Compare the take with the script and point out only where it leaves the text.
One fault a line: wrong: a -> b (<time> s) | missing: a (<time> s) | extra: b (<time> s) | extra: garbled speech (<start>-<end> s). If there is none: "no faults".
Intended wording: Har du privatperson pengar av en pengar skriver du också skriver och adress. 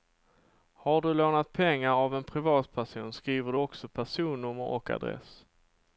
wrong: privatperson -> lånat (1.1 s)
wrong: pengar -> privatperson (2.2 s)
wrong: skriver -> personnummer (3.9 s)